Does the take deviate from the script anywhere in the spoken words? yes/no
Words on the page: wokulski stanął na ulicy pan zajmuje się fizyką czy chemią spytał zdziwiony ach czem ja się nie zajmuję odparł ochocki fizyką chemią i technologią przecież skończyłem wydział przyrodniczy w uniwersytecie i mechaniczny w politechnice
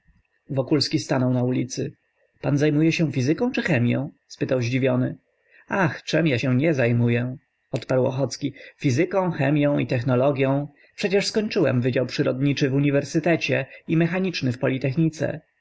no